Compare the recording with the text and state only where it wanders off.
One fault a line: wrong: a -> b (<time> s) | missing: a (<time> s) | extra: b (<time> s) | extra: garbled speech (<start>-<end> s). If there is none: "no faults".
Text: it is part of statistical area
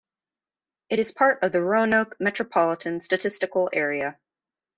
extra: the roanoke metropolitan (1.5 s)